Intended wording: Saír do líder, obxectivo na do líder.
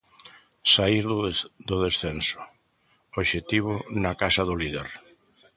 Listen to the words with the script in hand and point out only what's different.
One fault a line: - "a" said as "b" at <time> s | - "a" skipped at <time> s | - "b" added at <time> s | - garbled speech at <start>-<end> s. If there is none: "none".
- "líder" said as "descenso" at 1.9 s
- "casa" added at 4.2 s